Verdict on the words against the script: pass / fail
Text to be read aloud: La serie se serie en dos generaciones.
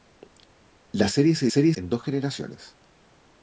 pass